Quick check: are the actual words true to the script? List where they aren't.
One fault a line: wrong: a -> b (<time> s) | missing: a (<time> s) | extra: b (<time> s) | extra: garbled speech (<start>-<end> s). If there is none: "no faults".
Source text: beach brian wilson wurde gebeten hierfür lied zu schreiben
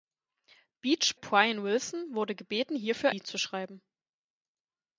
no faults